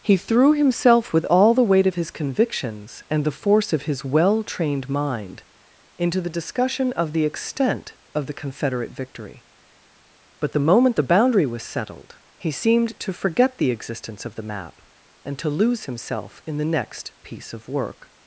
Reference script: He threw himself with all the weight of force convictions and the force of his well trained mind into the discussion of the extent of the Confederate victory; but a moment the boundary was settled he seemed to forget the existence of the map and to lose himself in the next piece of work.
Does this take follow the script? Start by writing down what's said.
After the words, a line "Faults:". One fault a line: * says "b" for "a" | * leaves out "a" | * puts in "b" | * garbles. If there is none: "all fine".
He threw himself with all the weight of his convictions and the force of his well trained mind into the discussion of the extent of the Confederate victory; but the moment the boundary was settled he seemed to forget the existence of the map and to lose himself in the next piece of work.
Faults:
* says "his" for "force"
* says "the" for "a"